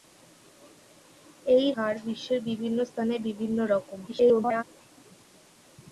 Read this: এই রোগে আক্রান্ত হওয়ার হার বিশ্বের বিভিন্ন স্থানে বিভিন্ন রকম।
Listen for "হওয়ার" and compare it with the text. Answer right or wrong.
wrong